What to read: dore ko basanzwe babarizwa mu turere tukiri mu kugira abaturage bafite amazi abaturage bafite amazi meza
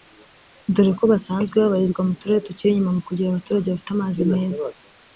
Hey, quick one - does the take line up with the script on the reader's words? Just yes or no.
no